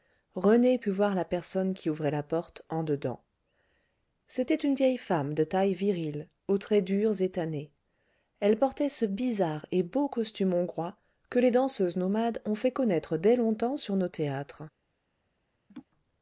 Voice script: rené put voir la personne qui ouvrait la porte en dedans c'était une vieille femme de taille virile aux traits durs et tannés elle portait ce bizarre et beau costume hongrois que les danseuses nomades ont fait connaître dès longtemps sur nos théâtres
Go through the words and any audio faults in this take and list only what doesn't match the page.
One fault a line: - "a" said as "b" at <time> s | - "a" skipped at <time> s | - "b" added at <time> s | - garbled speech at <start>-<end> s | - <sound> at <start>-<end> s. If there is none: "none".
- laugh at 15.7-15.9 s